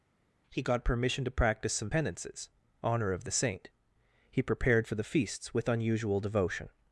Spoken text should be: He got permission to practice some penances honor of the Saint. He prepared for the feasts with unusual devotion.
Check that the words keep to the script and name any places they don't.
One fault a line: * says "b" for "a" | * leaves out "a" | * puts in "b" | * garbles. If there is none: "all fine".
all fine